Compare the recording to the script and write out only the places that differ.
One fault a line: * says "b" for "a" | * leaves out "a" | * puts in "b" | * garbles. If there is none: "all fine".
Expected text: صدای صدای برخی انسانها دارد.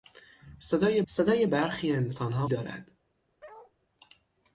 all fine